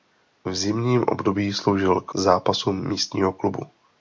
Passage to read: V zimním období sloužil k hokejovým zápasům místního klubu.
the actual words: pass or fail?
fail